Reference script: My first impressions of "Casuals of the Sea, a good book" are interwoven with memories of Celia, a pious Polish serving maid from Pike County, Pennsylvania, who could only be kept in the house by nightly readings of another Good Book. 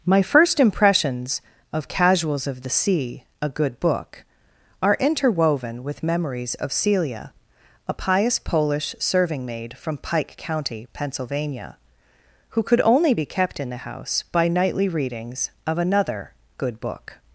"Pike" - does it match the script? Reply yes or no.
yes